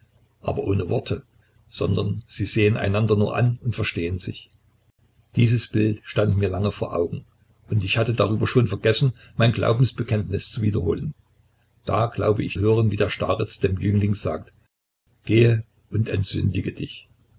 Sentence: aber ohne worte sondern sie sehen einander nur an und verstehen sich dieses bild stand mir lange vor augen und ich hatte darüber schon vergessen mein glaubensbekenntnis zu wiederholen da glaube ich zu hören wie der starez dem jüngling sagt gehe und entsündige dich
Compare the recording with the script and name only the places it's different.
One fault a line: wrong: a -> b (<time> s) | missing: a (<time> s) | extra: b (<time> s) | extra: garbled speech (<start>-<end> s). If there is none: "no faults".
missing: zu (12.6 s)